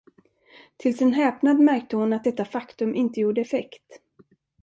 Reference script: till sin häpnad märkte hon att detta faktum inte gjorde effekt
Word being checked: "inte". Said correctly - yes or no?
yes